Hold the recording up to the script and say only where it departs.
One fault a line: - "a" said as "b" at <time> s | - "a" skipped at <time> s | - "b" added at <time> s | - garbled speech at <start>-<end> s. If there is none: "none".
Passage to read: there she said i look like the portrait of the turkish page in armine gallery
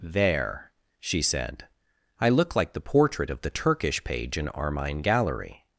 none